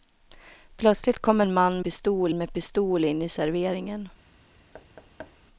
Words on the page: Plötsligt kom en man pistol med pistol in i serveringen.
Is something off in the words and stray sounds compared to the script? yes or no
yes